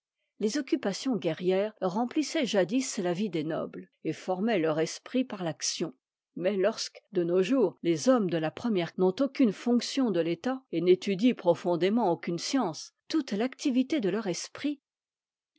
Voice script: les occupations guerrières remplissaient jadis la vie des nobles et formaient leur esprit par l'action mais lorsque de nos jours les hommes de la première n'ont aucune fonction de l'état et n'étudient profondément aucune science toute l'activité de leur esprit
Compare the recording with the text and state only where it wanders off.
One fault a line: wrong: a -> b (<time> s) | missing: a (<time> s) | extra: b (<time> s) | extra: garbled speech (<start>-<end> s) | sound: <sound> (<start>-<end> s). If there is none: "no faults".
no faults